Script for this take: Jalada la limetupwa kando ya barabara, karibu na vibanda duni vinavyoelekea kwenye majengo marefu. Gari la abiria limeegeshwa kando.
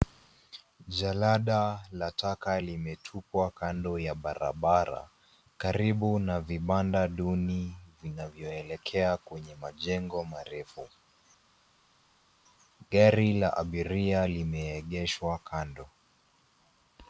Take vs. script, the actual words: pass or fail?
fail